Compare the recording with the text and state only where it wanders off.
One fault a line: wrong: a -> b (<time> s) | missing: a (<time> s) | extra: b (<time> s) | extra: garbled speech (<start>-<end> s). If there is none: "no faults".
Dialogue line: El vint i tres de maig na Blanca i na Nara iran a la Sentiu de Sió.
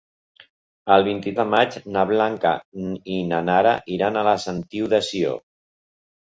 missing: tres (1.3 s)